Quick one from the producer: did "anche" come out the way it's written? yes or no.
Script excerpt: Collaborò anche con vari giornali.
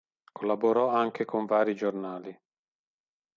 yes